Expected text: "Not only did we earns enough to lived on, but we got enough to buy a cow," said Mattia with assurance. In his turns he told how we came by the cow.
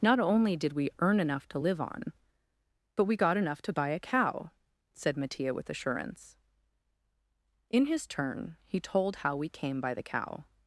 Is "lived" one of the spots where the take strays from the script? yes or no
yes